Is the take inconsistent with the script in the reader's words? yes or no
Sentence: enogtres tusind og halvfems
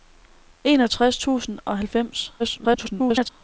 yes